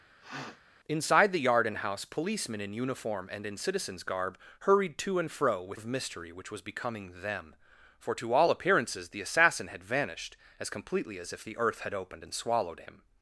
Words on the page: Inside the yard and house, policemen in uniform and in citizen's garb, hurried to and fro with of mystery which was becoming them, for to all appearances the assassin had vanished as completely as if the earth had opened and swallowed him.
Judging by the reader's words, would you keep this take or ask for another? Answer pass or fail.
pass